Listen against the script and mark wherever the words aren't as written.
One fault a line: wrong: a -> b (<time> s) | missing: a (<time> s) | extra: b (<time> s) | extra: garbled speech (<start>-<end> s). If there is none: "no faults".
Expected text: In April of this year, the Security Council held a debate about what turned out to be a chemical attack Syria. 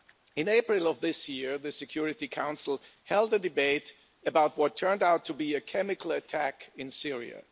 extra: in (6.7 s)